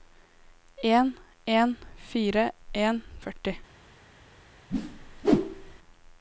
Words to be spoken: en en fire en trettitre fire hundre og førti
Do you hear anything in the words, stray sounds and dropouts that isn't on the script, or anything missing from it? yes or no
yes